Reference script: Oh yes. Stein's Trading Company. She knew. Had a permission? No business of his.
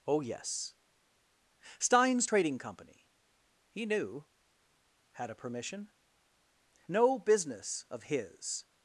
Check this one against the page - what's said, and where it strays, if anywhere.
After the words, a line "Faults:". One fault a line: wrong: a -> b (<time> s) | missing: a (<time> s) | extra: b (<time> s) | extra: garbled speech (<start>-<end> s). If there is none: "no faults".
Oh yes. Stein's Trading Company. He knew. Had a permission? No business of his.
Faults:
wrong: She -> He (3.7 s)